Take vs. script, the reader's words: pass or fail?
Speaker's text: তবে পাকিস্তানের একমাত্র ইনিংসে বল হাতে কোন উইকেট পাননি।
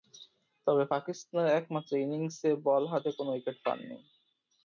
pass